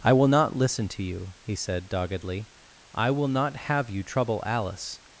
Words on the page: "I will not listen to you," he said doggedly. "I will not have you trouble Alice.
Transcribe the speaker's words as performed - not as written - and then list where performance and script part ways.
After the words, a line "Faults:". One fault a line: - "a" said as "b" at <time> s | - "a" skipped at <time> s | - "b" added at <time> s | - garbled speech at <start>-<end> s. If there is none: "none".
"I will not listen to you," he said doggedly. "I will not have you trouble Alice.
Faults:
none